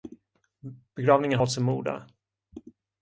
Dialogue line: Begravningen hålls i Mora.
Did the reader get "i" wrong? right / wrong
right